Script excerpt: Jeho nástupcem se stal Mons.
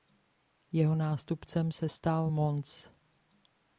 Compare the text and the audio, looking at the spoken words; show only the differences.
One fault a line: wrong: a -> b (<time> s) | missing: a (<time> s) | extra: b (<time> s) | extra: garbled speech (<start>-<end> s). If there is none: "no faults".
no faults